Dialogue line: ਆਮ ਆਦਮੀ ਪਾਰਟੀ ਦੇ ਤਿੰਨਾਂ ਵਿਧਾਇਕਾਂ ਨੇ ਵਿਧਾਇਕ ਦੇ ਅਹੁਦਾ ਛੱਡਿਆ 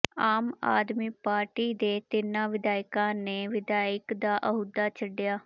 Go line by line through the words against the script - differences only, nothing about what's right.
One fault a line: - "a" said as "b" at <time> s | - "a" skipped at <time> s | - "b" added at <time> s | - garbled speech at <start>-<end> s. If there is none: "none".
- "ਦੇ" said as "ਦਾ" at 4.1 s